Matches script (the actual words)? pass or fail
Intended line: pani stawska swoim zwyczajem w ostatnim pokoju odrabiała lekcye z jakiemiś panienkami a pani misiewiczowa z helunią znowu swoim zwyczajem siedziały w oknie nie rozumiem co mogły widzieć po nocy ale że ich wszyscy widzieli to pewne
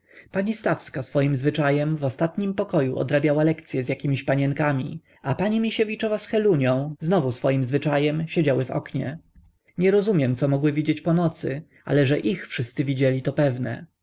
pass